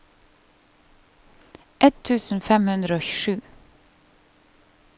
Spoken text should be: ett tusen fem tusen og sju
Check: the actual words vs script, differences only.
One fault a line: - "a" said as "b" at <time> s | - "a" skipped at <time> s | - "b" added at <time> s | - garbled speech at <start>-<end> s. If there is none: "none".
- "tusen" said as "hundre" at 2.7 s